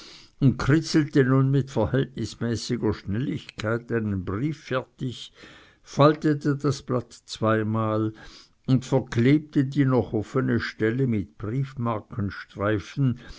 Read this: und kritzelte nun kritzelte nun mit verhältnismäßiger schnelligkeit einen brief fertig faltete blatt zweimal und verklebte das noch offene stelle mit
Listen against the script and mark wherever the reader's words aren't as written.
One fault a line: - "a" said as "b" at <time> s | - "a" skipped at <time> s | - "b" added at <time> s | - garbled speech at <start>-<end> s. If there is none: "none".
- "kritzelte nun" skipped at 1.5 s
- "das" added at 6.5 s
- "das" said as "die" at 9.6 s